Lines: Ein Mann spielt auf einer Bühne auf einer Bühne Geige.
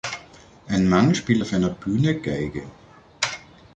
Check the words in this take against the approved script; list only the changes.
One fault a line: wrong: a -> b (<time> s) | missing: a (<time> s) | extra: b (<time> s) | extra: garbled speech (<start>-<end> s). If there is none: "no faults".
missing: auf einer Bühne (2.2 s)